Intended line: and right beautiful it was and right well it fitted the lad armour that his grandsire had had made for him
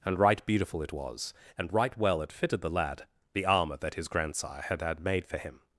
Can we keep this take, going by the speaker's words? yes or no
no